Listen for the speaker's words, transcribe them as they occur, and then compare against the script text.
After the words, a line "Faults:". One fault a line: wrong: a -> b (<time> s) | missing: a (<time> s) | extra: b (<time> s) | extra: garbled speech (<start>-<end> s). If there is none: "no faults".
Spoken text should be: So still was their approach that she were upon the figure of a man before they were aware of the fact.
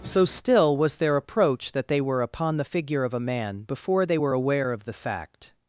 So still was their approach that they were upon the figure of a man before they were aware of the fact.
Faults:
wrong: she -> they (1.9 s)